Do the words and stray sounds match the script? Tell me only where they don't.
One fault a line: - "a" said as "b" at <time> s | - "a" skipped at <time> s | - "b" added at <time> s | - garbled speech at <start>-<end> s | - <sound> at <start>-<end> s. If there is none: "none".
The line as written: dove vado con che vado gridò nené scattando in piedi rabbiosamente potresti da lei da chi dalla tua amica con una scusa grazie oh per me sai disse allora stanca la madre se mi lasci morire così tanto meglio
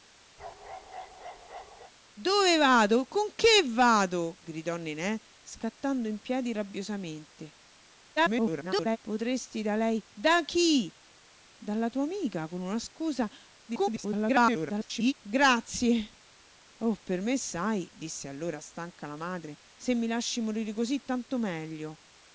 - bark at 0.4-1.9 s
- garbled speech at 8.2-9.0 s
- garbled speech at 13.7-15.1 s